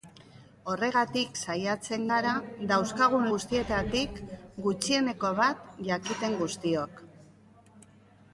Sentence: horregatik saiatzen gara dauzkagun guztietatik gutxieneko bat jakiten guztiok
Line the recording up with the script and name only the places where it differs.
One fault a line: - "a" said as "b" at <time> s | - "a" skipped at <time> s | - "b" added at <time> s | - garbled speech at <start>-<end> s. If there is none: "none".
none